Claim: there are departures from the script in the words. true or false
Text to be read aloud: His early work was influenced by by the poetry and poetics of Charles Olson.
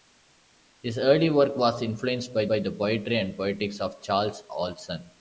false